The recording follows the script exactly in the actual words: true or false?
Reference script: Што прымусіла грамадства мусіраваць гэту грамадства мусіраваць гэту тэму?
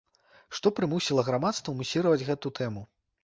false